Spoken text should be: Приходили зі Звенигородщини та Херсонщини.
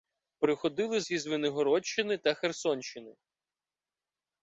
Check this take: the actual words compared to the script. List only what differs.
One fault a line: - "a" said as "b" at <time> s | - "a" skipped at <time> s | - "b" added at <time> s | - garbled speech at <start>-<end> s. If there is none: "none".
none